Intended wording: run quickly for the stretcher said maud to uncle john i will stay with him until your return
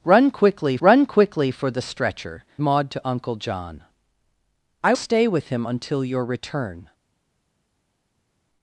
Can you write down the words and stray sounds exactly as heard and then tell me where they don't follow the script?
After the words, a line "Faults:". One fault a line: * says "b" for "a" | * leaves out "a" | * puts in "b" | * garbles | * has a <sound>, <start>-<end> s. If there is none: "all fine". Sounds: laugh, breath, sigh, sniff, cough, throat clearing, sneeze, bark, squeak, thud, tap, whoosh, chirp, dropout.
run quickly run quickly for the stretcher maud to uncle john i stay with him until your return
Faults:
* puts in "run quickly"
* leaves out "said"
* leaves out "will"